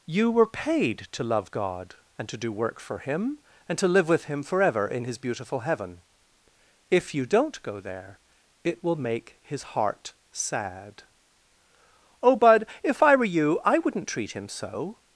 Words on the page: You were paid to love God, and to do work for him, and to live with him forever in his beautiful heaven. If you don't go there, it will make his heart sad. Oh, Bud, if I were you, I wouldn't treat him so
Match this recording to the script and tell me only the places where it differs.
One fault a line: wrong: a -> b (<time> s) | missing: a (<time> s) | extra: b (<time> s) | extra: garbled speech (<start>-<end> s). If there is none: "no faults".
no faults